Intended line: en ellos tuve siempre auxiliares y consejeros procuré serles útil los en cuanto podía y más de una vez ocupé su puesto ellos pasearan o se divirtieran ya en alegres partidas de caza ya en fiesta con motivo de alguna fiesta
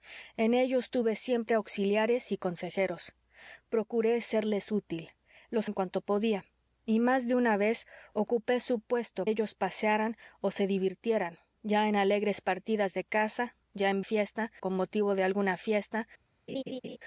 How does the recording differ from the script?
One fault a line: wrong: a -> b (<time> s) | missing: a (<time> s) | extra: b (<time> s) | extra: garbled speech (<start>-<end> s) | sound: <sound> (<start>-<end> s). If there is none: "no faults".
sound: laugh (16.5-17.0 s)